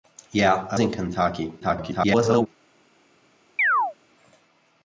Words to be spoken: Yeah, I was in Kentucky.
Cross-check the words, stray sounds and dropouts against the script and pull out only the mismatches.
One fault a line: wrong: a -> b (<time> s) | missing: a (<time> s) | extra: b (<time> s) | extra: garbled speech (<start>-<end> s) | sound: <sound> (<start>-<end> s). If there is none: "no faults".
missing: was (0.8 s)
extra: garbled speech (1.6-2.5 s)
sound: chirp (3.6-3.9 s)